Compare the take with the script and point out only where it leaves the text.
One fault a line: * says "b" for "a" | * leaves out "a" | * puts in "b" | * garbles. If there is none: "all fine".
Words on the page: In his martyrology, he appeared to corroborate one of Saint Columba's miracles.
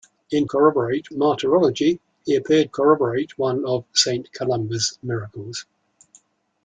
* says "corroborate" for "his"
* leaves out "to"